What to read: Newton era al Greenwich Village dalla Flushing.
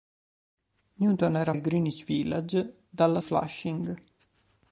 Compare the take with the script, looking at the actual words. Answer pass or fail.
pass